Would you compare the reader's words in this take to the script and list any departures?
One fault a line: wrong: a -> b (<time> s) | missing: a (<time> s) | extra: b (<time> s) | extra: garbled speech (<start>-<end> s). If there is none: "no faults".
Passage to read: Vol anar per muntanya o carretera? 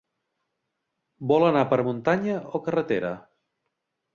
no faults